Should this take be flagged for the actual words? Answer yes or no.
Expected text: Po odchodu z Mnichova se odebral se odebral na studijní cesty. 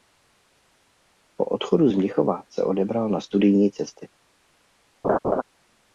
yes